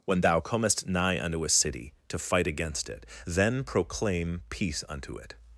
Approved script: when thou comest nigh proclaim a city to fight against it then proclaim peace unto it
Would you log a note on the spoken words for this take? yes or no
yes